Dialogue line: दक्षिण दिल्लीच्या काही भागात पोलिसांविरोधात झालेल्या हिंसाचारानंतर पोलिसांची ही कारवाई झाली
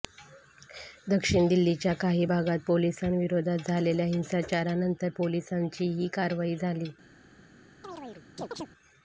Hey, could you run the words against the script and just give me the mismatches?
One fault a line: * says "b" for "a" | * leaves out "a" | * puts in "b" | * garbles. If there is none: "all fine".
all fine